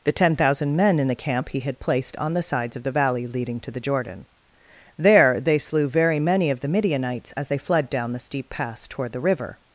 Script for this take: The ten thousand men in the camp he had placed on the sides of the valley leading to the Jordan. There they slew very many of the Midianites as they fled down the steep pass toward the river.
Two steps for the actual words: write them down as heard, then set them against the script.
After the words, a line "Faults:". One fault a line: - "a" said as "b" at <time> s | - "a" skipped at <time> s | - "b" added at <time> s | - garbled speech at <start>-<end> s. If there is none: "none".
The ten thousand men in the camp he had placed on the sides of the valley leading to the Jordan. There they slew very many of the Midianites as they fled down the steep pass toward the river.
Faults:
none